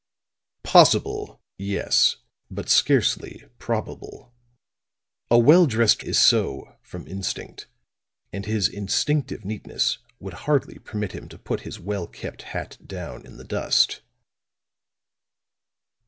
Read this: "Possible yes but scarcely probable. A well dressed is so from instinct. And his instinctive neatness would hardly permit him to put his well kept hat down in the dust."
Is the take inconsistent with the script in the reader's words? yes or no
no